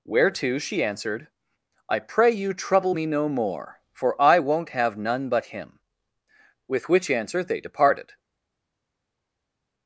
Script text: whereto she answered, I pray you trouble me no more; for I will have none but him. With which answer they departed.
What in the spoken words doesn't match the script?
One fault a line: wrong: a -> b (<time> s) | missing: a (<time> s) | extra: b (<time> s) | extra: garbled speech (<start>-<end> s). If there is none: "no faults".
wrong: will -> won't (4.4 s)